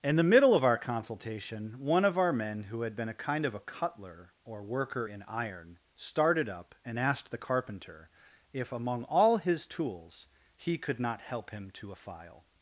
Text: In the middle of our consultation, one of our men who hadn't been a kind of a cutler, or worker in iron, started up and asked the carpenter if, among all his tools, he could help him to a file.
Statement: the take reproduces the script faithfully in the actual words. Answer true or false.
false